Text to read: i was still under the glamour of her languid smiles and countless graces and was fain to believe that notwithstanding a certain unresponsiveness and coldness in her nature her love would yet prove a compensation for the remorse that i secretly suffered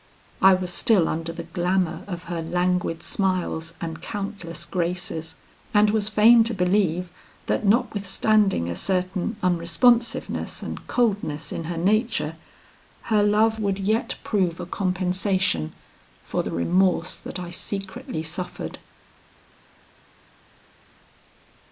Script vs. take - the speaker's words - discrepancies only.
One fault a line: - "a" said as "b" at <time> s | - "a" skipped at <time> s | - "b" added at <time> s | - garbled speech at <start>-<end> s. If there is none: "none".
none